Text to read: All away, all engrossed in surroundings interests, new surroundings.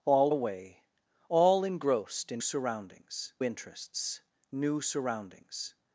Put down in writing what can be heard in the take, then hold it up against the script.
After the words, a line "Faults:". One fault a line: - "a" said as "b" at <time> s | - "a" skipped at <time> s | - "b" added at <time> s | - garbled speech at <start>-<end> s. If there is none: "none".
All away, all engrossed in surroundings interests, new surroundings.
Faults:
none